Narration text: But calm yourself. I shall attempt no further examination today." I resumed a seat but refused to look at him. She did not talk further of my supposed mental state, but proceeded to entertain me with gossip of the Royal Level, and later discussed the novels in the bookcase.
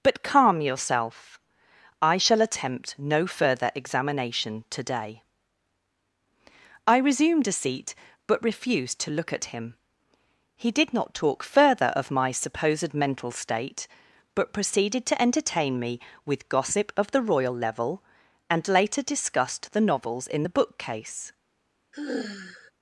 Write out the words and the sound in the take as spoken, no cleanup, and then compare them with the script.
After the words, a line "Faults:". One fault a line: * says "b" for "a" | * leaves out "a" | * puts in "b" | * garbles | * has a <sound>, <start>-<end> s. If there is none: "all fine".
But calm yourself. I shall attempt no further examination today." I resumed a seat but refused to look at him. He did not talk further of my supposed mental state, but proceeded to entertain me with gossip of the Royal Level, and later discussed the novels in the bookcase.
Faults:
* says "He" for "She"
* has a sigh, 21.9-22.7 s